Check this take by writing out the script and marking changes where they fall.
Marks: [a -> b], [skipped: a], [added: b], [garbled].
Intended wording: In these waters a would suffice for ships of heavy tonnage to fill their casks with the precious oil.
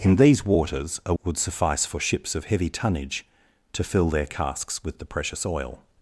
In these waters a would suffice for ships of heavy tonnage to fill their casks with the precious oil.